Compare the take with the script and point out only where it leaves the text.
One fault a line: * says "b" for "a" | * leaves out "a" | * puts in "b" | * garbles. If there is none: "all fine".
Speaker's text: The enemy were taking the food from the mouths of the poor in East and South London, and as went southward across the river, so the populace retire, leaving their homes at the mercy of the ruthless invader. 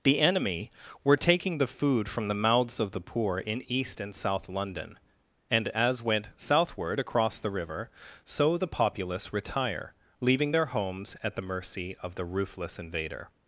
all fine